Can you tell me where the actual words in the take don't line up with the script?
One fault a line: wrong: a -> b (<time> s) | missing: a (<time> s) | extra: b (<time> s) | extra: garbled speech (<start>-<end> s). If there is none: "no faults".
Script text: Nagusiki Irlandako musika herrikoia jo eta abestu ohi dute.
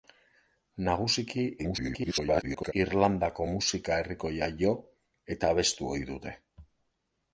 extra: garbled speech (1.6-2.7 s)